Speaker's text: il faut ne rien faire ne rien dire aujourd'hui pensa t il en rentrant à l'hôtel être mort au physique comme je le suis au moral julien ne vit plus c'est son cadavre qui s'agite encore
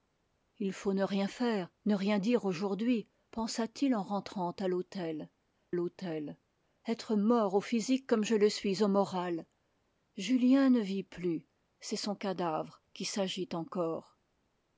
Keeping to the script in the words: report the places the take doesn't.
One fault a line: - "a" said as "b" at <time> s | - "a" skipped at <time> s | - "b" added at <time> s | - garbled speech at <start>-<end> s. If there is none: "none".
- "l'hôtel" added at 5.7 s